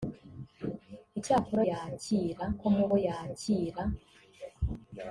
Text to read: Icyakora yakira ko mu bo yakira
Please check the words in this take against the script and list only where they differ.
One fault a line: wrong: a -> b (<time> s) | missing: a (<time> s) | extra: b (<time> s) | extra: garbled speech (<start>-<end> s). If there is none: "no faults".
no faults